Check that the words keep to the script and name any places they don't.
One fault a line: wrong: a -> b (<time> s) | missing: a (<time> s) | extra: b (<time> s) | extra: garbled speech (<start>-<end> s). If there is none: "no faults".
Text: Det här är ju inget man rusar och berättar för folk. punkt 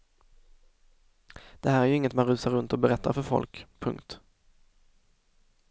extra: runt (2.5 s)